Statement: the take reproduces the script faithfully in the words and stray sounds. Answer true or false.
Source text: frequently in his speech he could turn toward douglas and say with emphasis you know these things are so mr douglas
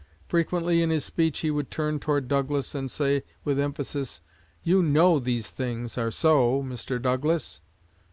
false